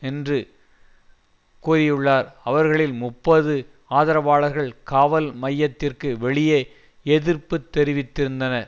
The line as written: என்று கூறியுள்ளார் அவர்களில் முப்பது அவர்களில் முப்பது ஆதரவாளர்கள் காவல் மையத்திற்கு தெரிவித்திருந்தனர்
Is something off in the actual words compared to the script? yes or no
yes